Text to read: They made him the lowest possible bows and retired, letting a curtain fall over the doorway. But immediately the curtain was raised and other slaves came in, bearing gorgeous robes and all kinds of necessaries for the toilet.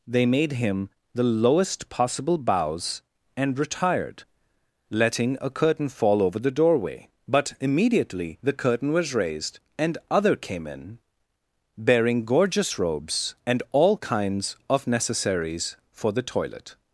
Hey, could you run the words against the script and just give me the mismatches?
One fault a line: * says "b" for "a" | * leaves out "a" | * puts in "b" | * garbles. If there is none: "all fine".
* leaves out "slaves"